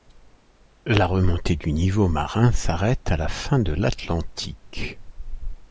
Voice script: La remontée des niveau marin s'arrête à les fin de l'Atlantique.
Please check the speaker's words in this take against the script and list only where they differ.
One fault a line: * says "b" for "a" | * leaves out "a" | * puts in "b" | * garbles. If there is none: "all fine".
* says "du" for "des"
* says "la" for "les"